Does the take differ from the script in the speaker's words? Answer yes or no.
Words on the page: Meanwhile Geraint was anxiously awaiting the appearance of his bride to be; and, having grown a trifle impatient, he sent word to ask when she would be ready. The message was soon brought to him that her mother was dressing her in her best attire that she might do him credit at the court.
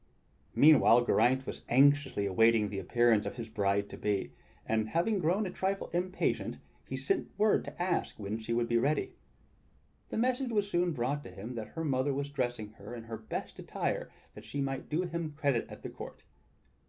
no